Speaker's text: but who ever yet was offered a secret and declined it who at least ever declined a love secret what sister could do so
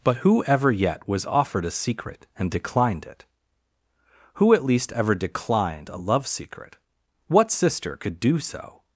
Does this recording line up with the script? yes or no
yes